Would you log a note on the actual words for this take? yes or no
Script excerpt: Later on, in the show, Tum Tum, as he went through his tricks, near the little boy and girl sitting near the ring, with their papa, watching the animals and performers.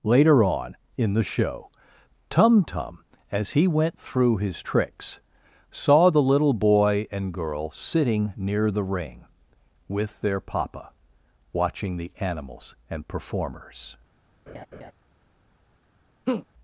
yes